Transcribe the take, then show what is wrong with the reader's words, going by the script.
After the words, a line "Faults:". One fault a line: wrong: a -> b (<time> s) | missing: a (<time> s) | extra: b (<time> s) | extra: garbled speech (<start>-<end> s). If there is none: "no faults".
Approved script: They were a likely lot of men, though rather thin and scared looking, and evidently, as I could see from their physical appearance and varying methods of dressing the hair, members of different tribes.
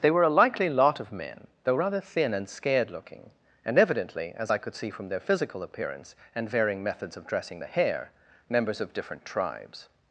They were a likely lot of men, though rather thin and scared looking, and evidently, as I could see from their physical appearance and varying methods of dressing the hair, members of different tribes.
Faults:
no faults